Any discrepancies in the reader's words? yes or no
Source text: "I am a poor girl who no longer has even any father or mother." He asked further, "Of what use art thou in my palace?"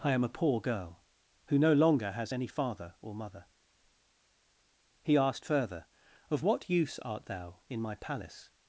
yes